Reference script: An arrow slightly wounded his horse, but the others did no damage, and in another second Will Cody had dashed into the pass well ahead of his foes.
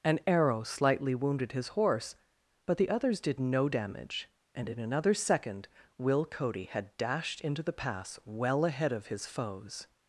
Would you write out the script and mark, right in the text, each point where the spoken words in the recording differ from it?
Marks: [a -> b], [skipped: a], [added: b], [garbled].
An arrow slightly wounded his horse, but the others did no damage, and in another second Will Cody had dashed into the pass well ahead of his foes.